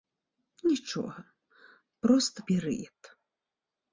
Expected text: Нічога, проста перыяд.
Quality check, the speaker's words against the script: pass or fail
pass